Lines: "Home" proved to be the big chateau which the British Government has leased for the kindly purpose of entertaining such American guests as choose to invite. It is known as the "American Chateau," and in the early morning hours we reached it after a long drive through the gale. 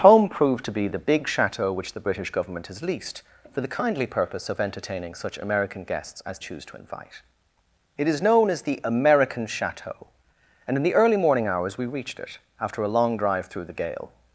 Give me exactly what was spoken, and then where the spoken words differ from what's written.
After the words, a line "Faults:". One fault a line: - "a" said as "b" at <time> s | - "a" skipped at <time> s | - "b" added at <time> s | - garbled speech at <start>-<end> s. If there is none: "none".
"Home" proved to be the big chateau which the British Government has leased for the kindly purpose of entertaining such American guests as choose to invite. It is known as the "American Chateau," and in the early morning hours we reached it after a long drive through the gale.
Faults:
none